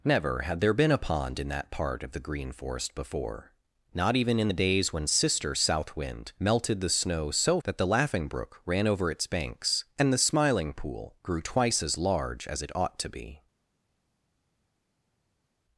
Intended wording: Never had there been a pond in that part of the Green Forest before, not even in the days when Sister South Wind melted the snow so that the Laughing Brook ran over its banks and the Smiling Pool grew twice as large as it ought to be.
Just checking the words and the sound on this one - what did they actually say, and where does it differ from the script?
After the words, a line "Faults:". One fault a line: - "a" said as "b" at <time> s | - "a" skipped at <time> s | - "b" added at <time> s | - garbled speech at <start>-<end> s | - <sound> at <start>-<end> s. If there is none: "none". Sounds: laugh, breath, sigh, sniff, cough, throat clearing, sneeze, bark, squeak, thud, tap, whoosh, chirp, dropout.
Never had there been a pond in that part of the Green Forest before, not even in the days when Sister South Wind melted the snow so that the Laughing Brook ran over its banks and the Smiling Pool grew twice as large as it ought to be.
Faults:
none